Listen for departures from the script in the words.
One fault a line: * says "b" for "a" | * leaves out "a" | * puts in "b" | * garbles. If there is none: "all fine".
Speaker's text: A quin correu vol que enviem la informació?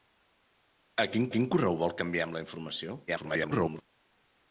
* puts in "quin"
* garbles